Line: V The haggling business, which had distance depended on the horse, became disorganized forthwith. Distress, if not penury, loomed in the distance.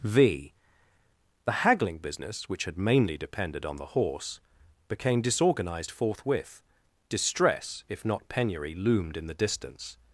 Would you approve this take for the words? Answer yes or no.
no